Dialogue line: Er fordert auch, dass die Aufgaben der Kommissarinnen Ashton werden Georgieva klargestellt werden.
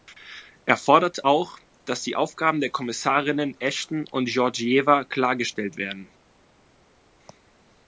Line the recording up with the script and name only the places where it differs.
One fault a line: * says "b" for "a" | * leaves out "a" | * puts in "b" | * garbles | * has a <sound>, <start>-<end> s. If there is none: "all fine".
* says "und" for "werden"